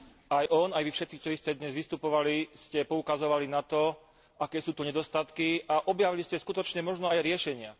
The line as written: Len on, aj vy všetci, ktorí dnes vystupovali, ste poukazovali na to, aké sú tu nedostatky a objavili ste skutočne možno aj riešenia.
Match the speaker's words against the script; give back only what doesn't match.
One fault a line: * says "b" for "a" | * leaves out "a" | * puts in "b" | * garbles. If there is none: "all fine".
* says "Aj" for "Len"
* puts in "ste"